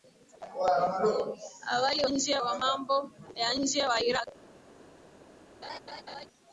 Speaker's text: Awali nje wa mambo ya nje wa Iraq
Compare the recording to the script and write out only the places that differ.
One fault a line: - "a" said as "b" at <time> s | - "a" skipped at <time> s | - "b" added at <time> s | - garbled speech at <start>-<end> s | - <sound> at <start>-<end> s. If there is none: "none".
- laugh at 5.6-6.3 s